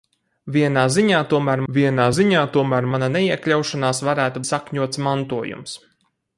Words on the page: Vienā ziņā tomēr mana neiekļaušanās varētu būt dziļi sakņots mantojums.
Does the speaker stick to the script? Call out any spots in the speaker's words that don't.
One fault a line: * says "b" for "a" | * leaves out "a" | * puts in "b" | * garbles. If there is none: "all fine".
* puts in "vienā ziņā tomēr"
* leaves out "būt dziļi"